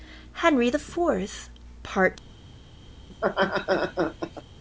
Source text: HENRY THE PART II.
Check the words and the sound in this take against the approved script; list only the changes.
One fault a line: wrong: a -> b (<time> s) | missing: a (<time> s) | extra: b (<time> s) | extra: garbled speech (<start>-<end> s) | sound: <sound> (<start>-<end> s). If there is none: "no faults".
extra: FOURTH (0.8 s)
sound: laugh (3.1-4.4 s)